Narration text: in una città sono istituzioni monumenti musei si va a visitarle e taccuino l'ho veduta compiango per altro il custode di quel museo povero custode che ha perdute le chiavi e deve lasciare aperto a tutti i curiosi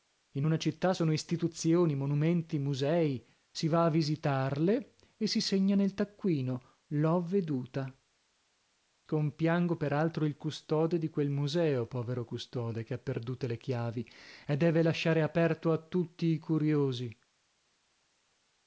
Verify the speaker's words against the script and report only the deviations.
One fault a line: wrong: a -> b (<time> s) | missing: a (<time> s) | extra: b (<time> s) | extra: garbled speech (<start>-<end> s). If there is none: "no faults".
extra: si segna nel (5.3 s)